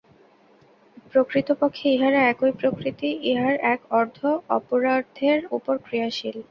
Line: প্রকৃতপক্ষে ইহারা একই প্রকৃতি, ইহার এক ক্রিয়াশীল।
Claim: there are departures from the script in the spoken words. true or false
true